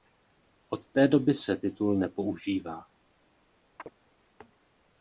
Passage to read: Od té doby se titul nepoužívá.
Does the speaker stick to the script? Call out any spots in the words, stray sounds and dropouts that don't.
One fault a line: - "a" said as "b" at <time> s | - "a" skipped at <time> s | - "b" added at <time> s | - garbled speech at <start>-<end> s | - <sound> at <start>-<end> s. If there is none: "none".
- chirp at 3.8-3.9 s